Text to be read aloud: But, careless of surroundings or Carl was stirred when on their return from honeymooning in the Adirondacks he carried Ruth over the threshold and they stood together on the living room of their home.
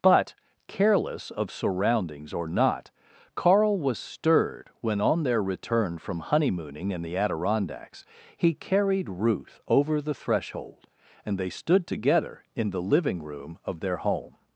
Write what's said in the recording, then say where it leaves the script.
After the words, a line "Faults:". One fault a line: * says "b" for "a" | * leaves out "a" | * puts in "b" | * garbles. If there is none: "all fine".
But, careless of surroundings or not, Carl was stirred when on their return from honeymooning in the Adirondacks he carried Ruth over the threshold and they stood together in the living room of their home.
Faults:
* puts in "not"
* says "in" for "on"